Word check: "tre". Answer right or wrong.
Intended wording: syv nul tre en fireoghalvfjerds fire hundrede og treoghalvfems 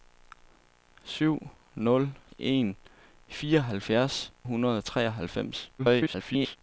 wrong